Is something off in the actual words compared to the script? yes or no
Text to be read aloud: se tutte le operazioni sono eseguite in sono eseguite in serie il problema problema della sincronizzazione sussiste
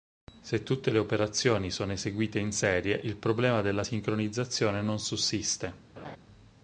yes